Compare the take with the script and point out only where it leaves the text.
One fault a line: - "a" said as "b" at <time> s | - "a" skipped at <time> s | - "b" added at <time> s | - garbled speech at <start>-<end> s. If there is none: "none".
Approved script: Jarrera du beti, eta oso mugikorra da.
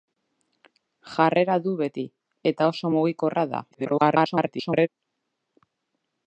- garbled speech at 3.7-4.9 s